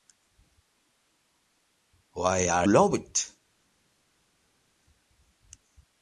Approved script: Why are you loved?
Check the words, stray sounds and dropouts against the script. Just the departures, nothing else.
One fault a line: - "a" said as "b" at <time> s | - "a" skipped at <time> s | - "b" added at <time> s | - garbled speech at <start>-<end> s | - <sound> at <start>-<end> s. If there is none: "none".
- "you" skipped at 2.7 s